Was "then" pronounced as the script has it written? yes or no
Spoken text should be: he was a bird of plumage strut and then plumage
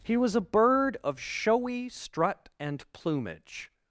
no